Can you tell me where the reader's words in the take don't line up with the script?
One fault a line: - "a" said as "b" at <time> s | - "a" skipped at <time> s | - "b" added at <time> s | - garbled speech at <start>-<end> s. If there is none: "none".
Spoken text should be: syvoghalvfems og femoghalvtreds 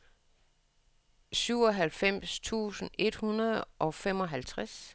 - "tusind et hundrede" added at 2.4 s